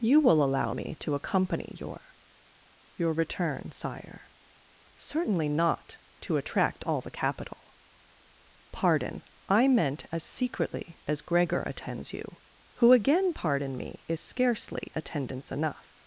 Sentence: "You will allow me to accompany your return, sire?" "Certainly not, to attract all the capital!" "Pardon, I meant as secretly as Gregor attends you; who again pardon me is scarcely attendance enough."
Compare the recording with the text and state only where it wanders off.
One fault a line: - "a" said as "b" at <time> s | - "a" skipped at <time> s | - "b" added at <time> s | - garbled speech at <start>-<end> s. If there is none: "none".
- "your" added at 2.9 s